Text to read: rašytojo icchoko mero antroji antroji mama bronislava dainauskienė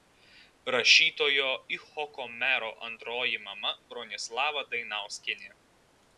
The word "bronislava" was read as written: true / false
true